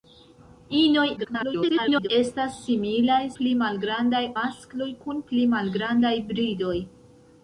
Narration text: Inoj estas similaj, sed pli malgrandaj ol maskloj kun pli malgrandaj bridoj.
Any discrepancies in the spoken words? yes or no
yes